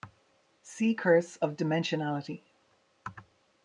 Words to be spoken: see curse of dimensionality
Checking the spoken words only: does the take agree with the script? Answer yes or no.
yes